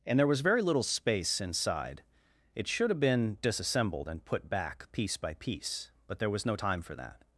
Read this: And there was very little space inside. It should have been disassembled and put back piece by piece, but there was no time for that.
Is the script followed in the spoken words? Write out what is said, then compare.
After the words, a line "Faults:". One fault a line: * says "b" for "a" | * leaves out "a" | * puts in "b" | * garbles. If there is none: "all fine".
And there was very little space inside. It should have been disassembled and put back piece by piece, but there was no time for that.
Faults:
all fine